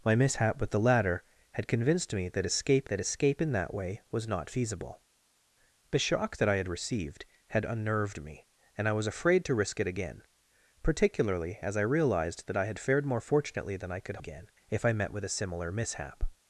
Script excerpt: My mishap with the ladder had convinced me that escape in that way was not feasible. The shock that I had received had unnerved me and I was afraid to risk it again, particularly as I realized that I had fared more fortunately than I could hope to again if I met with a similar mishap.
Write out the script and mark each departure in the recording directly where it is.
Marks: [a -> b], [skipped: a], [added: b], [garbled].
My mishap with the ladder had convinced me that escape [added: that escape] in that way was not feasible. The shock that I had received had unnerved me and I was afraid to risk it again, particularly as I realized that I had fared more fortunately than I could [skipped: hope to] again if I met with a similar mishap.